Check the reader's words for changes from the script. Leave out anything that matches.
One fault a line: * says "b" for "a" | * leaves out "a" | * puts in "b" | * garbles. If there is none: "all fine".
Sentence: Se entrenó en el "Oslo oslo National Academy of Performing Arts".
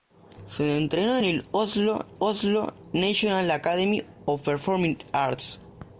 all fine